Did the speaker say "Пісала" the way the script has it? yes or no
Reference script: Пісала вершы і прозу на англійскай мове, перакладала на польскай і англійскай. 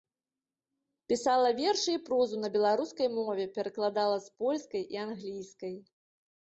yes